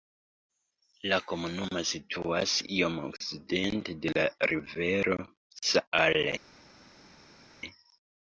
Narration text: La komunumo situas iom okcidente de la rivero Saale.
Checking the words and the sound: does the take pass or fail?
pass